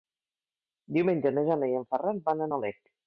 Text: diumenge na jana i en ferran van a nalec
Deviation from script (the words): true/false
false